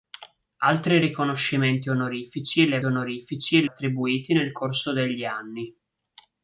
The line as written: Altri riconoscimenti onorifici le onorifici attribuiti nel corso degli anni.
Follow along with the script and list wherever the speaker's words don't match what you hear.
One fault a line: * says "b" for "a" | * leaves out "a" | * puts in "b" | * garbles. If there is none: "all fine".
all fine